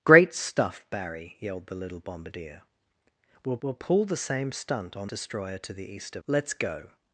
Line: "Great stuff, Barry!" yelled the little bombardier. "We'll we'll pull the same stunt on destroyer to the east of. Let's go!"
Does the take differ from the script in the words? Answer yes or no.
no